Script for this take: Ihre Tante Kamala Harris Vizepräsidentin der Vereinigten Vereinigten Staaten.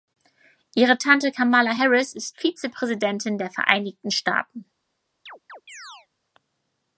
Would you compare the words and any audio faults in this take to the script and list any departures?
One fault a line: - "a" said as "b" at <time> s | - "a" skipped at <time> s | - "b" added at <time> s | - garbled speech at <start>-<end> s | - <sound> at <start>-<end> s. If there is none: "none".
- "ist" added at 2.1 s
- "Vereinigten" skipped at 4.1 s
- chirp at 5.3-6.1 s